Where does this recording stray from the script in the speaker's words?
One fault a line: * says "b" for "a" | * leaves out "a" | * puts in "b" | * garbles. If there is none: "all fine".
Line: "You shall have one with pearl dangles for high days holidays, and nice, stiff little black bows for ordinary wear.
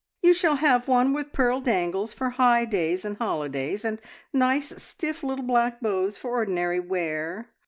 * puts in "and"